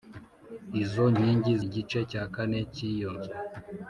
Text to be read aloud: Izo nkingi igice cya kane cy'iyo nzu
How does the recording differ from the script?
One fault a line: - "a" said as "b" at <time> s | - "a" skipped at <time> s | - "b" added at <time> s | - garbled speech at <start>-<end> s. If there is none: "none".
none